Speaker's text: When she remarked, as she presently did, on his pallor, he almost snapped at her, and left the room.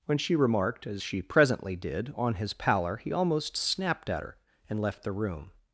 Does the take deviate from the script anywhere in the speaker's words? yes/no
no